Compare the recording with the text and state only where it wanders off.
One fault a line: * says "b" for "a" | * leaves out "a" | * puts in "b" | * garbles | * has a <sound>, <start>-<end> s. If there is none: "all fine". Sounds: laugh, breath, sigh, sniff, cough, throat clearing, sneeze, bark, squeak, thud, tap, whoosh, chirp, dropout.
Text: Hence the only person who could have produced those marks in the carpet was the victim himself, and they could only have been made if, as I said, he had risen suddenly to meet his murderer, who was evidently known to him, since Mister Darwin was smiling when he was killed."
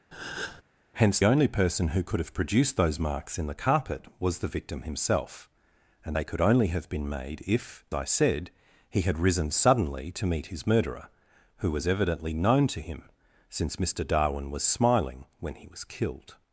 * has a breath, 0.1-0.6 s
* leaves out "the"
* leaves out "as"